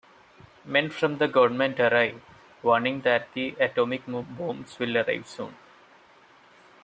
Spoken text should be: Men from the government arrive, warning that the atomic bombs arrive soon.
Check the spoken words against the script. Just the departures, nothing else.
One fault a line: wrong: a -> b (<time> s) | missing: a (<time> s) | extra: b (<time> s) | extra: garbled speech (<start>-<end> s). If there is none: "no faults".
extra: will (4.8 s)